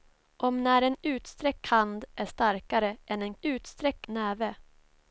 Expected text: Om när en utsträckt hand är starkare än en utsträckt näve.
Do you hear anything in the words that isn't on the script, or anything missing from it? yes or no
no